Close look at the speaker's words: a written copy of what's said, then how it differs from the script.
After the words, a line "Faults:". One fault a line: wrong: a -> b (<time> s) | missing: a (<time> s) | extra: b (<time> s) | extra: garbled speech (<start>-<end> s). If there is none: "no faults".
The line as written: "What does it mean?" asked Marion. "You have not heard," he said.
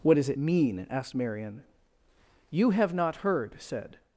"What does it mean?" asked Marion. "You have not heard," said.
Faults:
missing: he (3.6 s)